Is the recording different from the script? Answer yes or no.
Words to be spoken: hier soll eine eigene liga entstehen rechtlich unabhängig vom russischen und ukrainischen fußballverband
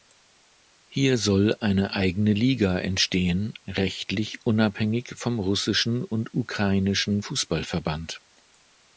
no